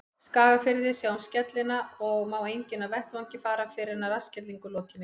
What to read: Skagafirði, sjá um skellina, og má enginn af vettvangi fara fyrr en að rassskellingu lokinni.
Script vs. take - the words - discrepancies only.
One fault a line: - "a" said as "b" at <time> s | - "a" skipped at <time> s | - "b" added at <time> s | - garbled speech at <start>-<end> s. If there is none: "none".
none